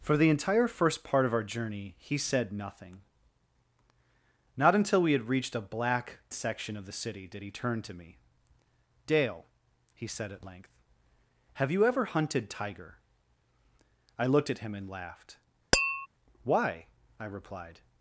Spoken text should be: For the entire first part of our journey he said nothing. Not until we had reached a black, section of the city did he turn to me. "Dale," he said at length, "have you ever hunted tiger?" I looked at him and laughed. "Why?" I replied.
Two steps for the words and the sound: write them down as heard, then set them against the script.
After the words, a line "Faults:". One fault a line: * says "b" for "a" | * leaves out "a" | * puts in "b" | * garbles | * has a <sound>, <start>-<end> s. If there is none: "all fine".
For the entire first part of our journey he said nothing. Not until we had reached a black, section of the city did he turn to me. "Dale," he said at length, "have you ever hunted tiger?" I looked at him and laughed. "Why?" I replied.
Faults:
* has a tap, 15.7-16.1 s